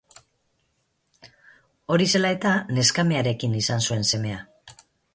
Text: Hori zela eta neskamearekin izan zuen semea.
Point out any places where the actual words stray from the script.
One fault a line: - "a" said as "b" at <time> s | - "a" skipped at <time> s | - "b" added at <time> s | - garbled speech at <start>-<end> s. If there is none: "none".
none